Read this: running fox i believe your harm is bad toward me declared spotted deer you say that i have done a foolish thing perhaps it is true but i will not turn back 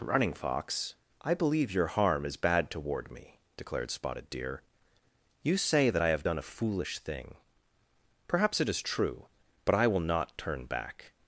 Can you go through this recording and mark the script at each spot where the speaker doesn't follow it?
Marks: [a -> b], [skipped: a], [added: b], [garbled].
running fox i believe your harm is bad toward me declared spotted deer you say that i have done a foolish thing perhaps it is true but i will not turn back